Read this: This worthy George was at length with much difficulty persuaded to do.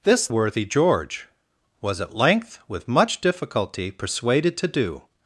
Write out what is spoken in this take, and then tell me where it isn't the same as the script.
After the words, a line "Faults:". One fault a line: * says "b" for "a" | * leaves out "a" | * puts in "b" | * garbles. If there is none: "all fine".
This worthy George was at length with much difficulty persuaded to do.
Faults:
all fine